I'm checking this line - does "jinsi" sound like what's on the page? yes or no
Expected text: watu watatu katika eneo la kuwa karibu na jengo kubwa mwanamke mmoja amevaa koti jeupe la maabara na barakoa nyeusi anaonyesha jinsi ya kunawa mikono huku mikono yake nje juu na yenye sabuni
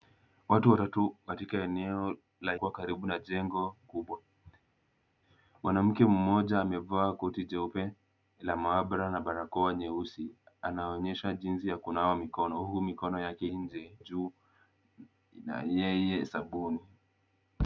yes